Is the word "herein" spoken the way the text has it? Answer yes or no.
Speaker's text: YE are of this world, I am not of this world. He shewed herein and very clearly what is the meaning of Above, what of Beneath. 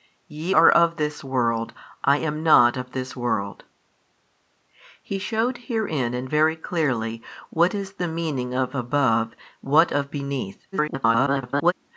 yes